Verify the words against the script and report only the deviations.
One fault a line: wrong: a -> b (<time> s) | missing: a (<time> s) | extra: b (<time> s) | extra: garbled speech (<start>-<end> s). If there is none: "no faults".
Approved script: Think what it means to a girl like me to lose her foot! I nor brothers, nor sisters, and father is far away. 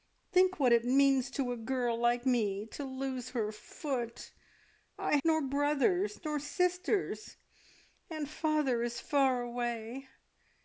no faults